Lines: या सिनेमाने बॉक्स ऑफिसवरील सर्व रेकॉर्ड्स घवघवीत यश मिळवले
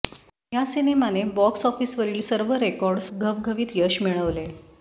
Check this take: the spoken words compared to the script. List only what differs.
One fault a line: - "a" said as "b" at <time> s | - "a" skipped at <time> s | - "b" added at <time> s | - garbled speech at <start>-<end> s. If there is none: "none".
none